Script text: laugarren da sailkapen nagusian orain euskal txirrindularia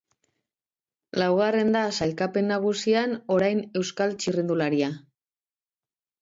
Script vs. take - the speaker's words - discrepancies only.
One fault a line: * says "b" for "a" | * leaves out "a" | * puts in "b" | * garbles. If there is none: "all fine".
all fine